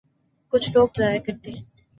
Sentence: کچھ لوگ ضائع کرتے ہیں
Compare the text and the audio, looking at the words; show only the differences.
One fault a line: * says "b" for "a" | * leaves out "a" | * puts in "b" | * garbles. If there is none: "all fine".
all fine